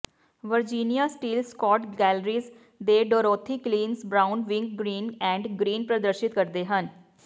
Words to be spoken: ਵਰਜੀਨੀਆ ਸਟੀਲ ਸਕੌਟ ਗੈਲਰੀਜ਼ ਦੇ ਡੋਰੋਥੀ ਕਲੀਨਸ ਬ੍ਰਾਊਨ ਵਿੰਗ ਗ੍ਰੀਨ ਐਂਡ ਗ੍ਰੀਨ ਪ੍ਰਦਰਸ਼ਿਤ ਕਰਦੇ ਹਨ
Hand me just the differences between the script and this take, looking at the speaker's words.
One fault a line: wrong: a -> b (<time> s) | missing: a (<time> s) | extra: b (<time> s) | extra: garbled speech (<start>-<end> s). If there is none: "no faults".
no faults